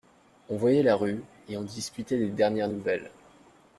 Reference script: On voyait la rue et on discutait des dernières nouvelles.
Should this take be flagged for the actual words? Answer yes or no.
no